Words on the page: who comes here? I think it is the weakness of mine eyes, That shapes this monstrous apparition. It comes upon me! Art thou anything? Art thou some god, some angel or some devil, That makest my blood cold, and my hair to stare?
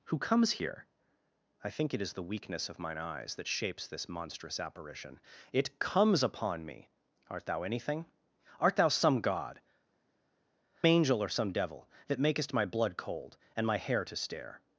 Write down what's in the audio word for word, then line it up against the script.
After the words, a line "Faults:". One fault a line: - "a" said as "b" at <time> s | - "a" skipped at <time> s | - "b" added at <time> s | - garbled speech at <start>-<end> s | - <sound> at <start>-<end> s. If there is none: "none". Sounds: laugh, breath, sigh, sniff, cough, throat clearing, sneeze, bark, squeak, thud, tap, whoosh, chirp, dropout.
who comes here? I think it is the weakness of mine eyes, That shapes this monstrous apparition. It comes upon me! Art thou anything? Art thou some god, angel or some devil, That makest my blood cold, and my hair to stare?
Faults:
- "some" skipped at 9.6 s